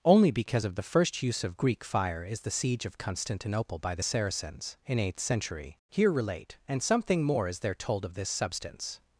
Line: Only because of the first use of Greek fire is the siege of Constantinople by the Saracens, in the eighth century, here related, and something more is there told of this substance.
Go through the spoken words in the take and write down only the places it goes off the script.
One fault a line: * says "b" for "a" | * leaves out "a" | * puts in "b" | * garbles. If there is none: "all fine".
* leaves out "the"
* says "relate" for "related"